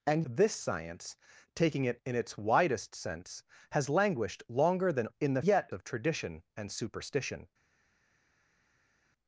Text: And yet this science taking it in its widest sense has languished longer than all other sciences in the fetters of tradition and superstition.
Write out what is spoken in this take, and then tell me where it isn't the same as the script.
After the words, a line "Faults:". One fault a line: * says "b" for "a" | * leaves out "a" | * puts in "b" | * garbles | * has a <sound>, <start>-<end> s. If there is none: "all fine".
And this science taking it in its widest sense has languished longer than in the yet of tradition and superstition.
Faults:
* leaves out "yet"
* leaves out "all other sciences"
* says "yet" for "fetters"